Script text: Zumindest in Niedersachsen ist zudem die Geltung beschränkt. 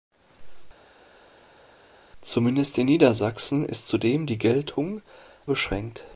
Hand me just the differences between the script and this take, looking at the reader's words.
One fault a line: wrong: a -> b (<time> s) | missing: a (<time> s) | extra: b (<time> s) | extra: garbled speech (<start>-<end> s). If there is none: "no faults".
no faults